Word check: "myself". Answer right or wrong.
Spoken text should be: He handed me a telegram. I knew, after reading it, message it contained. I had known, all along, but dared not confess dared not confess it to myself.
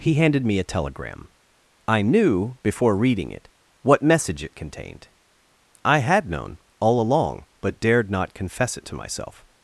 right